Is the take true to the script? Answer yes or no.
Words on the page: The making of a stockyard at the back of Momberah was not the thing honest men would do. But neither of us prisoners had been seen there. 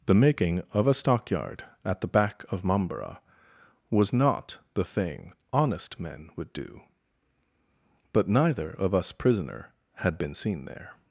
no